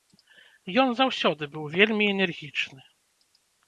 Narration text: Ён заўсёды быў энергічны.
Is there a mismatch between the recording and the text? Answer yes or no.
yes